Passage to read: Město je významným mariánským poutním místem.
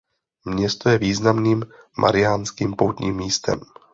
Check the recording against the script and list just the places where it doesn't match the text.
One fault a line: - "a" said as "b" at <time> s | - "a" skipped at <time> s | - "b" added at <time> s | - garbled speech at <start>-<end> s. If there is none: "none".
none